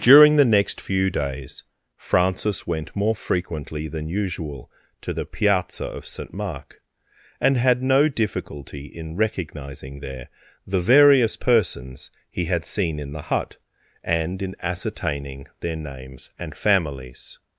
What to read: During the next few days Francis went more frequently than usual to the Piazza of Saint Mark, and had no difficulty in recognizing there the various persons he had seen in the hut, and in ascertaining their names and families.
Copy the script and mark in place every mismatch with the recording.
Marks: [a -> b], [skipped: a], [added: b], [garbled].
During the next few days Francis went more frequently than usual to the Piazza of Saint Mark, and had no difficulty in recognizing there the various persons he had seen in the hut, and in ascertaining their names and families.